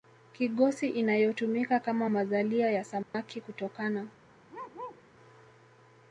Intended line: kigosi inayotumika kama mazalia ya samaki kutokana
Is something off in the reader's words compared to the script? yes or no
no